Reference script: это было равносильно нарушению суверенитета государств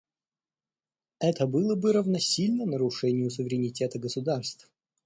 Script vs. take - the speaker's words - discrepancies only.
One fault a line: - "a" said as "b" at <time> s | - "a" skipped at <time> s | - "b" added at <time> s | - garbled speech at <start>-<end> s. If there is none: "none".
- "бы" added at 1.8 s